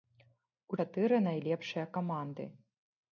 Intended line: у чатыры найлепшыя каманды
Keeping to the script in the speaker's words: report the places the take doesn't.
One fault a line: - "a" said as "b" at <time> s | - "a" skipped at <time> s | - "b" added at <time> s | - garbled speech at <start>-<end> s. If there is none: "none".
none